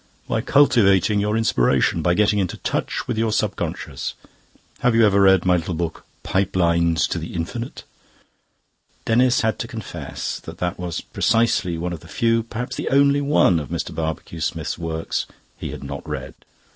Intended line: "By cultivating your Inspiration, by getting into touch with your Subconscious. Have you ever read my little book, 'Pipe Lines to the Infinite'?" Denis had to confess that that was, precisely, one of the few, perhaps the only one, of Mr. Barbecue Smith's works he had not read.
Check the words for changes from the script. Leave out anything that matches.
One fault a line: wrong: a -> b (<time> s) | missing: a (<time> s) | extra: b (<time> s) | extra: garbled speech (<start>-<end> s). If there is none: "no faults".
no faults